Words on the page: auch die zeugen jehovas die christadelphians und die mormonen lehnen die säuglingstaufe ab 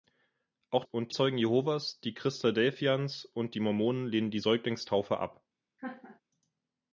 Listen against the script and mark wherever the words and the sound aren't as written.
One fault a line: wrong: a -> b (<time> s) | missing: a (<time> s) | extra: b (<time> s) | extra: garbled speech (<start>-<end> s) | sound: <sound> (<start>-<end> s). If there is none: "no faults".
wrong: die -> und (0.8 s)
sound: laugh (5.8-6.2 s)